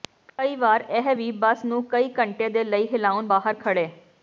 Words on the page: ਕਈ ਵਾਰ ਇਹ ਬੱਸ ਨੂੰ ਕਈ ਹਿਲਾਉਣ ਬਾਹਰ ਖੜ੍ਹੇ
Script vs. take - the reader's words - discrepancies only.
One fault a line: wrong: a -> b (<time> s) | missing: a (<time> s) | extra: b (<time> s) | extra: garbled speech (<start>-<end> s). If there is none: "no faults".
extra: ਵੀ (1.1 s)
extra: ਘੰਟੇ ਦੇ ਲਈ (2.2 s)